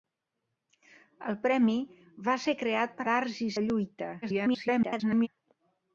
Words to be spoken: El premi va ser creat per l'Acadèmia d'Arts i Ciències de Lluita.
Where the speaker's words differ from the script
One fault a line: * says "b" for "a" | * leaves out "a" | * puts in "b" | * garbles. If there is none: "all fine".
* leaves out "l'Acadèmia"
* leaves out "Ciències"
* garbles